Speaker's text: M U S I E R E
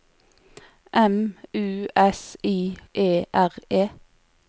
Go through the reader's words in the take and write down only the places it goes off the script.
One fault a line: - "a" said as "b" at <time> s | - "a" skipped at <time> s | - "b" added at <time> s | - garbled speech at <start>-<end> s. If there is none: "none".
none